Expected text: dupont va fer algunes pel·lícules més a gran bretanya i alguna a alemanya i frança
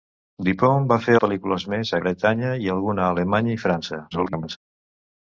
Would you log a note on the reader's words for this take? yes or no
yes